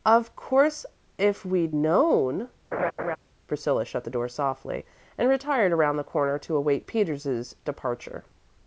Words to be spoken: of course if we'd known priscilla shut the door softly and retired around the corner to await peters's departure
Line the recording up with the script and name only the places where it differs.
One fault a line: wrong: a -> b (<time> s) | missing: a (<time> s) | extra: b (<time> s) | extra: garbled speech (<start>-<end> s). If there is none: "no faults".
no faults